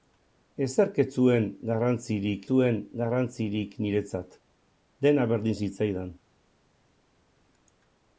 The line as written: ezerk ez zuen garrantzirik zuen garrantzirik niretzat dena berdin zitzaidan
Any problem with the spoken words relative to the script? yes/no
no